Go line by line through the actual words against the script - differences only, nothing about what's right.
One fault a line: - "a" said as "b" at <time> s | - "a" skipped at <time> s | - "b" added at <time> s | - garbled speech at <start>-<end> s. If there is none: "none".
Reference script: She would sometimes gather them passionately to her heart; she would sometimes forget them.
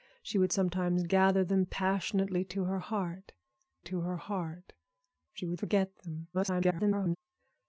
- "to her heart" added at 3.8 s
- "sometimes" skipped at 5.6 s
- garbled speech at 6.3-7.2 s